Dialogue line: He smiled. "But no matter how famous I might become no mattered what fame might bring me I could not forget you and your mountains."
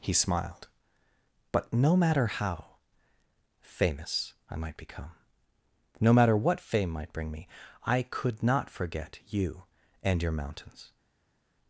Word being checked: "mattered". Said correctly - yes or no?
no